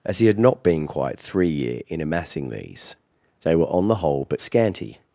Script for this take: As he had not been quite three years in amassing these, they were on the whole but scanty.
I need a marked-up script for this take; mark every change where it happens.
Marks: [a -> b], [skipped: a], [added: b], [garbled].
As he had not been quite three [years -> year] in amassing these, they were on the whole but scanty.